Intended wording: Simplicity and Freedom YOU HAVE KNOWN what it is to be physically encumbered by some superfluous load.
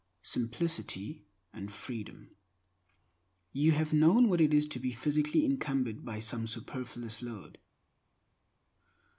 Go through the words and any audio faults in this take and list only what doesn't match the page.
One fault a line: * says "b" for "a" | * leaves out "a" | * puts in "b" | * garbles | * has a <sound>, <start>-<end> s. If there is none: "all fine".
all fine